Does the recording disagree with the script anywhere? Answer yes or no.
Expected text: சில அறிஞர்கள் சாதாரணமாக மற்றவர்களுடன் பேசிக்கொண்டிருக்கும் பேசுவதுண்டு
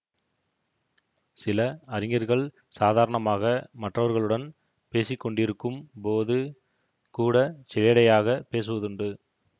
yes